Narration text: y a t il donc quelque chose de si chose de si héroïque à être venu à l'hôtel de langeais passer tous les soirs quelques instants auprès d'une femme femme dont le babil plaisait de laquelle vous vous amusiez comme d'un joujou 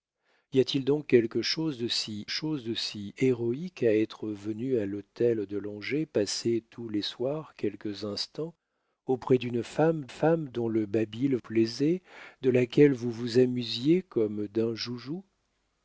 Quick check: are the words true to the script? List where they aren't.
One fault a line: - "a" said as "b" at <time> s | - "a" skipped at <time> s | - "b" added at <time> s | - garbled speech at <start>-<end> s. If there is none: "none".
none